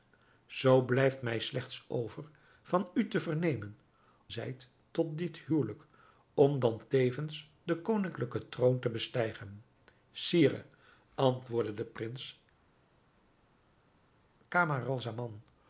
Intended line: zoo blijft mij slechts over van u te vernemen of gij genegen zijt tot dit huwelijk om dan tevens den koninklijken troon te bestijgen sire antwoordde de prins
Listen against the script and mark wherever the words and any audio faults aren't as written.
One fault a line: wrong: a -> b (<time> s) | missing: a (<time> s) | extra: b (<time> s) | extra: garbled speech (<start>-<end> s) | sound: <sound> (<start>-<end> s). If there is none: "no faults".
missing: of gij genegen (3.8 s)